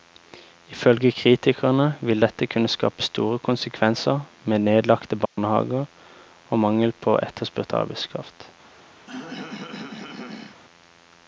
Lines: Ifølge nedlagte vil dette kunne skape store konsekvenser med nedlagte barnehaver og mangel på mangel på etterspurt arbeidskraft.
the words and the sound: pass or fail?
fail